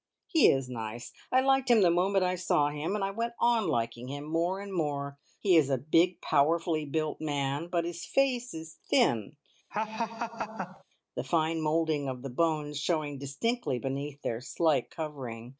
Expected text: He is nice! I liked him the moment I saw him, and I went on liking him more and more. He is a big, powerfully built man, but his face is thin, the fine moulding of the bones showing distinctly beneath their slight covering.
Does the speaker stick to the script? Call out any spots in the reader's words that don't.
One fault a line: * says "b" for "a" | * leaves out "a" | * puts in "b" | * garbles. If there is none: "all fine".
all fine